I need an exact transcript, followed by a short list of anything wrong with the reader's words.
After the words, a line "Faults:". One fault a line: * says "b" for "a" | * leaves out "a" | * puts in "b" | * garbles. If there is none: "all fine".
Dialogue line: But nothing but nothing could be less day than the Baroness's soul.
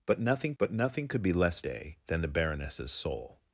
But nothing but nothing could be less day than the Baroness's soul.
Faults:
all fine